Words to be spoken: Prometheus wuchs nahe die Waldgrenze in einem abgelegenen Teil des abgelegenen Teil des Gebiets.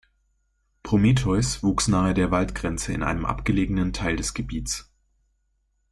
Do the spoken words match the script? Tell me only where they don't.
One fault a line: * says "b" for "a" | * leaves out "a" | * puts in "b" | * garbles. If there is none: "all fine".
* says "der" for "die"
* leaves out "abgelegenen Teil des"